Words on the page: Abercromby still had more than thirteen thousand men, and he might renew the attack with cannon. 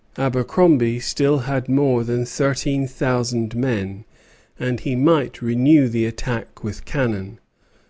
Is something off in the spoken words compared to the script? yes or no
no